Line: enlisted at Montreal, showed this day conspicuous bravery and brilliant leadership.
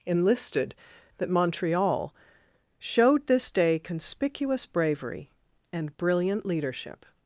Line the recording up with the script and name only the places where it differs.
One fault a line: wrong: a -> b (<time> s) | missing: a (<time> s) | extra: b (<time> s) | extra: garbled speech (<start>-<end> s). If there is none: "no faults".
wrong: at -> that (1.2 s)